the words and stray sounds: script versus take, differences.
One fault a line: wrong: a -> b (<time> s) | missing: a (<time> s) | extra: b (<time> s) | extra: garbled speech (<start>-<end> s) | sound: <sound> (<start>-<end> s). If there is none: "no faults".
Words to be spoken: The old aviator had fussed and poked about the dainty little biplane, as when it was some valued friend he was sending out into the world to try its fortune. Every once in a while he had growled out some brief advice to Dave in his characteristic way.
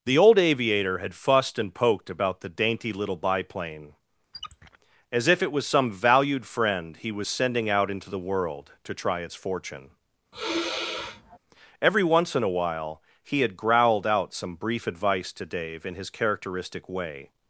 sound: squeak (4.3-4.8 s)
wrong: when -> if (5.3 s)
sound: sigh (10.3-11.4 s)